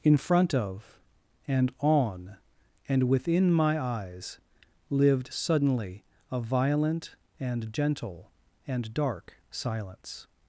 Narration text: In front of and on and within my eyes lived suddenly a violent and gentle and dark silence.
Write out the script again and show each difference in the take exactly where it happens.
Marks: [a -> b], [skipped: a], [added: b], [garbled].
In front of and on and within my eyes lived suddenly a violent and gentle and dark silence.